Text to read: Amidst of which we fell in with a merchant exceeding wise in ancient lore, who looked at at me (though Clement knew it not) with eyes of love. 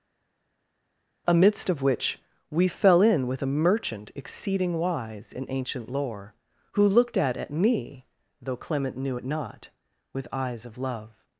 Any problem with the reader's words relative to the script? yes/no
no